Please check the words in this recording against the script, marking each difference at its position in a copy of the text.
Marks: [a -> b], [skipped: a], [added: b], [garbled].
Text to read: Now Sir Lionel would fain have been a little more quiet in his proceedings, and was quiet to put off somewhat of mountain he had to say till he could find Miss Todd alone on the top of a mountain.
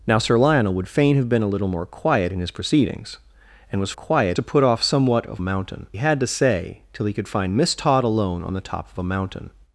Now Sir Lionel would fain have been a little more quiet in his proceedings, and was quiet to put off somewhat of mountain he had to say till he could find Miss Todd alone on the top of a mountain.